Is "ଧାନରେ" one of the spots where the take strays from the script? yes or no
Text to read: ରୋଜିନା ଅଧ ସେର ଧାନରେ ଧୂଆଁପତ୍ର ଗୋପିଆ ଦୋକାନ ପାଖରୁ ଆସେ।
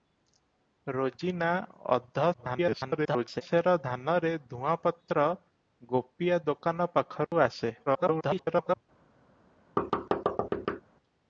no